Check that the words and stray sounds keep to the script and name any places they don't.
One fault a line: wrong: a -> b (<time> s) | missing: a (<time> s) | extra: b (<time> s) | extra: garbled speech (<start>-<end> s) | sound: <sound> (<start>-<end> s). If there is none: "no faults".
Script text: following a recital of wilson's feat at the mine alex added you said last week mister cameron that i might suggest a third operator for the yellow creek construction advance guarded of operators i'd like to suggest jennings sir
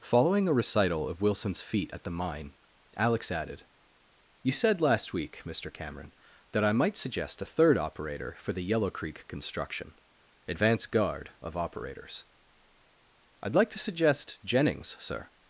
wrong: guarded -> guard (10.9 s)